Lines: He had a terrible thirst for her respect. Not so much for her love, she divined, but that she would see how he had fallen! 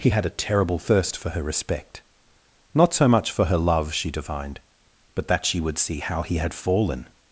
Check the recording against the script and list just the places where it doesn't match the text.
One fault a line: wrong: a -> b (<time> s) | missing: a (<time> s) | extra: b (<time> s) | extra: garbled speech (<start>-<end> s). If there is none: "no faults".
no faults